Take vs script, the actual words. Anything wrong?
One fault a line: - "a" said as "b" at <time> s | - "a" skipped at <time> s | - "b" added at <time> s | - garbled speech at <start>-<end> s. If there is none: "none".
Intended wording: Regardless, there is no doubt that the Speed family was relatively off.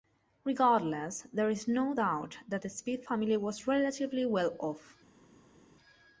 - "well" added at 4.3 s